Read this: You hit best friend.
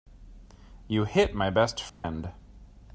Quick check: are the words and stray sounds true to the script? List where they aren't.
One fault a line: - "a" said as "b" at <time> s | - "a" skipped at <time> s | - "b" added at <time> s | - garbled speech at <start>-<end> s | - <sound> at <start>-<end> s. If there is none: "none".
- "my" added at 1.4 s
- dropout at 1.9-2.0 s